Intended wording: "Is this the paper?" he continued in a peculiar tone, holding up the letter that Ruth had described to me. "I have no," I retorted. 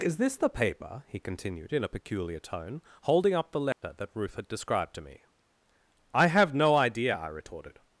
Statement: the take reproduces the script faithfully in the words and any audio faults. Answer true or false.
false